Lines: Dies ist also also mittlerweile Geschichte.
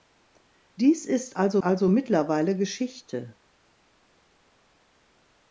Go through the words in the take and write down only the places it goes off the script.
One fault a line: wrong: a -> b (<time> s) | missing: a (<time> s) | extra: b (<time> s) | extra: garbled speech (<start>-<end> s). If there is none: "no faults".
no faults